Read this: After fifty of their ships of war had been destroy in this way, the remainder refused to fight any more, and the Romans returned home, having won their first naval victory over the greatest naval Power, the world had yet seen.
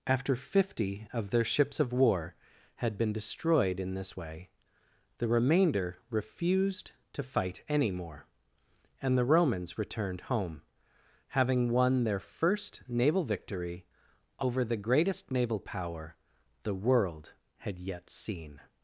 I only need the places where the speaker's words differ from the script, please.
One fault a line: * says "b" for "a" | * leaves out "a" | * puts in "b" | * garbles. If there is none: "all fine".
* says "destroyed" for "destroy"